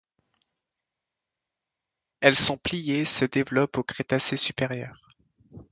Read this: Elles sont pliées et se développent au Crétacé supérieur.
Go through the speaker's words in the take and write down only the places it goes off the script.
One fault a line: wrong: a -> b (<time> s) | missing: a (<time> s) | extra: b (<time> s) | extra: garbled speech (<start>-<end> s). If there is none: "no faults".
no faults